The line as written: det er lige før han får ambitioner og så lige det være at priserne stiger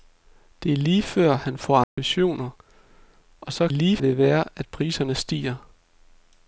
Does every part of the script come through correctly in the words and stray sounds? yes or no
no